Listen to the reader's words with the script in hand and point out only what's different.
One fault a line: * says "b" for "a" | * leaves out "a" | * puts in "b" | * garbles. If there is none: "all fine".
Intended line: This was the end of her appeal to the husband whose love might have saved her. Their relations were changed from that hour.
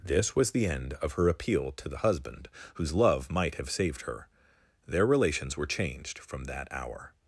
all fine